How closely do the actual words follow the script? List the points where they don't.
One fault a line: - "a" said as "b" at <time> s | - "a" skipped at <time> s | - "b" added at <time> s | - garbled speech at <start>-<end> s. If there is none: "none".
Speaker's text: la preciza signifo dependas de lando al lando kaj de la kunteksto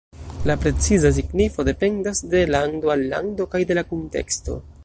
none